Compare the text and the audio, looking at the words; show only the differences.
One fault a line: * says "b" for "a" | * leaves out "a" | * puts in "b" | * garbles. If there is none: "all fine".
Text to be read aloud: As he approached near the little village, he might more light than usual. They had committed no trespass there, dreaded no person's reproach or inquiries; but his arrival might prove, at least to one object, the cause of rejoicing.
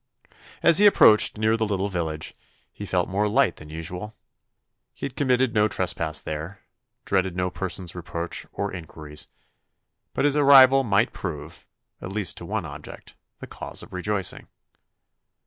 * says "felt" for "might"
* says "He" for "They"